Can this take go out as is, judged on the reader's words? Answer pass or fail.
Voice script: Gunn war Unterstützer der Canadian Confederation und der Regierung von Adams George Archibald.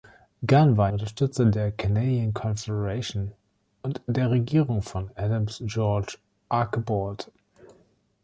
pass